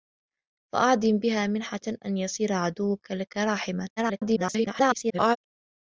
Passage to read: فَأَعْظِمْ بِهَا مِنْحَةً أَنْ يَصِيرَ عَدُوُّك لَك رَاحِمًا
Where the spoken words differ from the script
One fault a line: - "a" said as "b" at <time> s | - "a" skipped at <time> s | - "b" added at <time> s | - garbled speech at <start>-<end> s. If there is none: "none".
- garbled speech at 4.0-5.4 s